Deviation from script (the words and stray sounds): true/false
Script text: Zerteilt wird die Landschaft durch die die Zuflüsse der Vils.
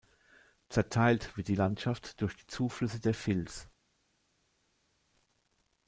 true